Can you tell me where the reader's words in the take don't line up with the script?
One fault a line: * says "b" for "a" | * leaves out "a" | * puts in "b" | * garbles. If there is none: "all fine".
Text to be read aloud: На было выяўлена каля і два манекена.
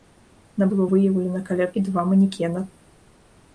all fine